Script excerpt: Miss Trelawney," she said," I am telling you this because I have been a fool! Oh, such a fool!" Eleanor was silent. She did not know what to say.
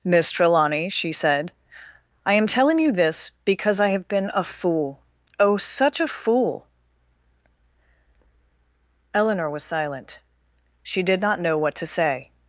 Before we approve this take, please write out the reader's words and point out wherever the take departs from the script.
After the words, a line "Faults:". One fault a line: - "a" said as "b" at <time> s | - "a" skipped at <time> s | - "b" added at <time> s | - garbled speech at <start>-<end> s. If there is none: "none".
Miss Trelawney," she said," I am telling you this because I have been a fool! Oh, such a fool!" Eleanor was silent. She did not know what to say.
Faults:
none